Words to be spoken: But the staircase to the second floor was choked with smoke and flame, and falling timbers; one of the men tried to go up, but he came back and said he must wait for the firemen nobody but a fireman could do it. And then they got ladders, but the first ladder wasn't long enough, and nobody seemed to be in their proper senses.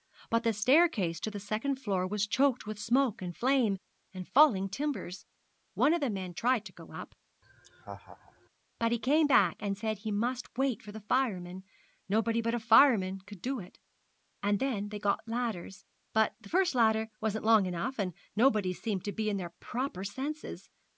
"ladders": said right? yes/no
yes